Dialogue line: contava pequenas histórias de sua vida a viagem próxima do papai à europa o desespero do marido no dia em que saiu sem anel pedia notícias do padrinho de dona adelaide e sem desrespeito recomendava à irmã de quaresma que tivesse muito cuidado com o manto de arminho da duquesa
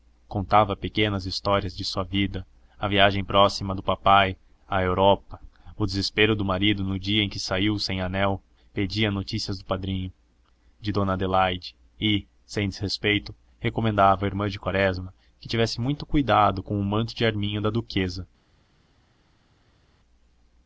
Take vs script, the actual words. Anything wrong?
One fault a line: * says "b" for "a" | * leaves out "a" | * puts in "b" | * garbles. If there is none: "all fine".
all fine